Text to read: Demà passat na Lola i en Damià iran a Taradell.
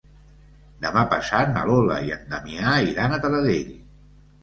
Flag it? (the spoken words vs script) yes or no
no